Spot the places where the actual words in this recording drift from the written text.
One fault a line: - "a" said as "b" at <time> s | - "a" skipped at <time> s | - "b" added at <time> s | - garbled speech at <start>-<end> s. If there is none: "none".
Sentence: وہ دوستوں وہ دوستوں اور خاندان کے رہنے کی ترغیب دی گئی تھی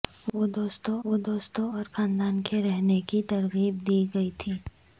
none